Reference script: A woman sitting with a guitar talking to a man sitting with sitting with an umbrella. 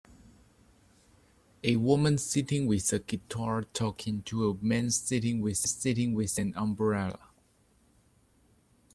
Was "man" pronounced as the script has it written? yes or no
yes